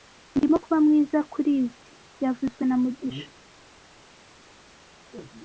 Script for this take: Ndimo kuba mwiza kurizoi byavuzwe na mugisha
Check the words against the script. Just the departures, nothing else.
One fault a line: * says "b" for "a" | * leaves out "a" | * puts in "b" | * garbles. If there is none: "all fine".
all fine